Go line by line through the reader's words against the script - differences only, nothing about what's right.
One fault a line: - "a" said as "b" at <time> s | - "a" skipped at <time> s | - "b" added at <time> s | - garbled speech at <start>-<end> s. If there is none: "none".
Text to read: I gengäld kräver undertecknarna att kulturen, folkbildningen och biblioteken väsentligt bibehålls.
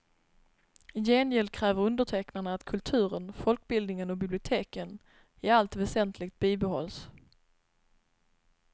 - "i allt" added at 5.4 s